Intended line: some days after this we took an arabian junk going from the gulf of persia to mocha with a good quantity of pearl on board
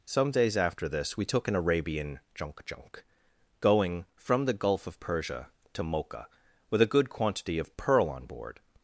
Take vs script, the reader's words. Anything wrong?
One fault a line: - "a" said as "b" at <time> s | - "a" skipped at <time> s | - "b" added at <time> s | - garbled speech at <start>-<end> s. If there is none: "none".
- "junk" added at 2.6 s